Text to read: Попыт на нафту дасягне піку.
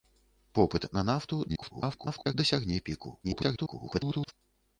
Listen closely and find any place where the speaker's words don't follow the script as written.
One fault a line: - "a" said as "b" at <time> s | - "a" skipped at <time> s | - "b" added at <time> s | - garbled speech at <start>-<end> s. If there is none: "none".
- garbled speech at 1.5-2.3 s
- garbled speech at 3.2-4.3 s